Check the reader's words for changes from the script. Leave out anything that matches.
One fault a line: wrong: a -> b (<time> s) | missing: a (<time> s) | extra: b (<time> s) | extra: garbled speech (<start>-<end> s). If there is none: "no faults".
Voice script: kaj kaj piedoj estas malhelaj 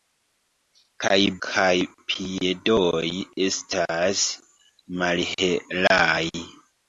no faults